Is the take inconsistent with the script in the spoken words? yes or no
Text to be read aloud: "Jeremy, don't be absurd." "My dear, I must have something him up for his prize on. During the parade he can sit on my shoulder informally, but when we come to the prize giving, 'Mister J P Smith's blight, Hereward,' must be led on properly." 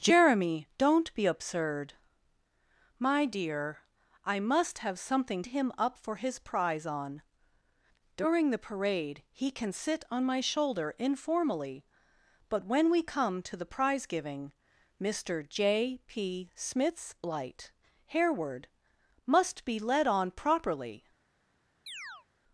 no